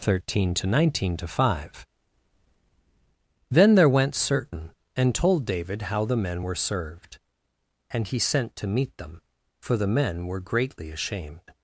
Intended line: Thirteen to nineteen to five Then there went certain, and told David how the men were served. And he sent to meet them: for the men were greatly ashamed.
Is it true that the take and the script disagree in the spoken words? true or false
false